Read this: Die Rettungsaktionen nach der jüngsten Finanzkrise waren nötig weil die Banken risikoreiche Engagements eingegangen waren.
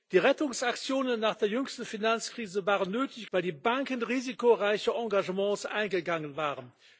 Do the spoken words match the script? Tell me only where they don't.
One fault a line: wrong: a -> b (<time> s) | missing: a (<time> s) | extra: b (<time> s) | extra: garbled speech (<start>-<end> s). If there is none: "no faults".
no faults